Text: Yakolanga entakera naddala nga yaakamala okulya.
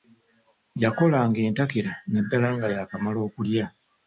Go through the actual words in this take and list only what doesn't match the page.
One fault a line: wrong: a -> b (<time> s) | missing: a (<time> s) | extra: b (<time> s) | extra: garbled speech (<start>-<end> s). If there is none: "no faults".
no faults